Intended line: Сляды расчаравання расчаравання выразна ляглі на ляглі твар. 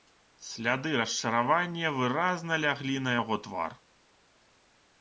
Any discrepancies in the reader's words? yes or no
yes